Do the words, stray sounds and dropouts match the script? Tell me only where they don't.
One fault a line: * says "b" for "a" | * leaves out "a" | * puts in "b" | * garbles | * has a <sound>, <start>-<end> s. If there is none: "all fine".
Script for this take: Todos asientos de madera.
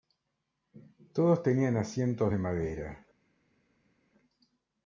* puts in "tenían"